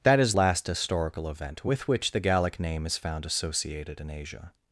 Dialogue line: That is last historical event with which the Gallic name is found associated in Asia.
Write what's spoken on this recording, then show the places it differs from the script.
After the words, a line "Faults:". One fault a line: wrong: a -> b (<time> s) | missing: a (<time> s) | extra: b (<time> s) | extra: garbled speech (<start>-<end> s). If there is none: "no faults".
That is last historical event with which the Gallic name is found associated in Asia.
Faults:
no faults